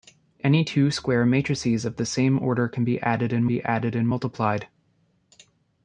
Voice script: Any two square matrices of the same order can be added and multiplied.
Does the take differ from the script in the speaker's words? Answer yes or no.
yes